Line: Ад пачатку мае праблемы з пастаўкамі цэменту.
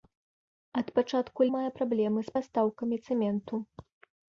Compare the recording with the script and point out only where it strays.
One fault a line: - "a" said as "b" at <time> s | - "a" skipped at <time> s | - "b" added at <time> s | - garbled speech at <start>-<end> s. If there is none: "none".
none